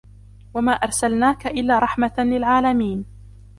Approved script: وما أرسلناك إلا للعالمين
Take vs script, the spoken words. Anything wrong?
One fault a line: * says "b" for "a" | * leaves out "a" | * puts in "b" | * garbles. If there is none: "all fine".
* puts in "رحمة"